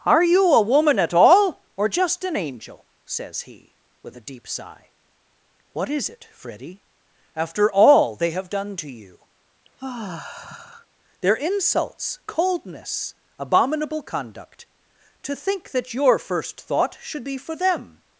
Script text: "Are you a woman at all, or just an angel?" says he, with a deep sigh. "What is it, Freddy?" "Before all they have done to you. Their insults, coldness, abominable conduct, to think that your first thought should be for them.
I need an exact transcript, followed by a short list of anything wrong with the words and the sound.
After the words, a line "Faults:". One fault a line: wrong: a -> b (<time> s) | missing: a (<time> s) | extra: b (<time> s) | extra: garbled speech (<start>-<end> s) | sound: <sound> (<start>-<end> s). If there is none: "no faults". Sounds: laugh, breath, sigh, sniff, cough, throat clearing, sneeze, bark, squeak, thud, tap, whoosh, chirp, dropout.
"Are you a woman at all, or just an angel?" says he, with a deep sigh. "What is it, Freddy?" "After all they have done to you. Their insults, coldness, abominable conduct, to think that your first thought should be for them.
Faults:
wrong: Before -> After (7.3 s)
sound: sigh (9.6-10.9 s)